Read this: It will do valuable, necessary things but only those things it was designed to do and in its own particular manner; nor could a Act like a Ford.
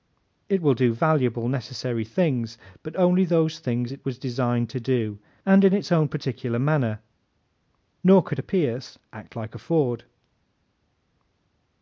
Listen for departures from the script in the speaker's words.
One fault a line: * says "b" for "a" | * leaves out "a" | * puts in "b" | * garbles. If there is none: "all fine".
* puts in "Pierce"